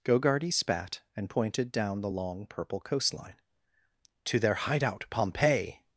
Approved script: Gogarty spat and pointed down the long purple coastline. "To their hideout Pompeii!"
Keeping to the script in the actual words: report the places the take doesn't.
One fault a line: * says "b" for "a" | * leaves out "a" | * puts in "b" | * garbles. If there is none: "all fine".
all fine